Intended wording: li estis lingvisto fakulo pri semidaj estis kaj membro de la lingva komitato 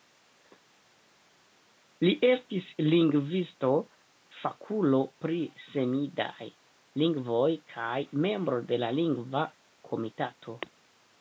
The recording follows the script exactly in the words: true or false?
false